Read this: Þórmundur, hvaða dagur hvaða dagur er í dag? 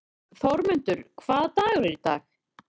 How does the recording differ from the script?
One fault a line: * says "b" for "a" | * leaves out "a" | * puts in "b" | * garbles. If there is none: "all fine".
* leaves out "hvaða dagur"